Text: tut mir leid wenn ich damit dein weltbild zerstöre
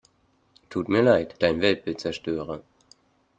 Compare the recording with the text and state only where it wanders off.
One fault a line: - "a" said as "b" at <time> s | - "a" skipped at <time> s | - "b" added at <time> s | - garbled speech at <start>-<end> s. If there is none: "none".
- "wenn ich damit" skipped at 1.4 s